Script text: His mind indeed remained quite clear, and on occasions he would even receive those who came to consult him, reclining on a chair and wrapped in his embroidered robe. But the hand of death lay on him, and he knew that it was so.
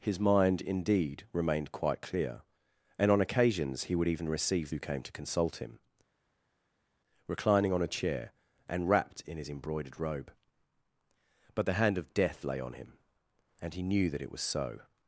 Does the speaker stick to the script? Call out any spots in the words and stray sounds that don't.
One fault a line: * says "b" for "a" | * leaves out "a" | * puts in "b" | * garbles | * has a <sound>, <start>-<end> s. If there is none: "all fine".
* leaves out "those"